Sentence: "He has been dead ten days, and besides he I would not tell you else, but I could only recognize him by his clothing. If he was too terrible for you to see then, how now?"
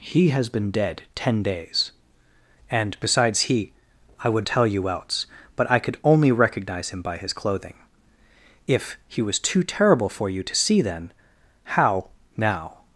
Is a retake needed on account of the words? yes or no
yes